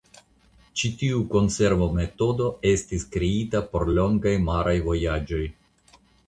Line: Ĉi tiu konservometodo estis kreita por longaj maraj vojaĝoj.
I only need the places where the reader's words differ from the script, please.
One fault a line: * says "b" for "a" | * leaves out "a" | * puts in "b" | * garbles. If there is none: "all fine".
all fine